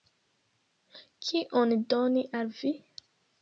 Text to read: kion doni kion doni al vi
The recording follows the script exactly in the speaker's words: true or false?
false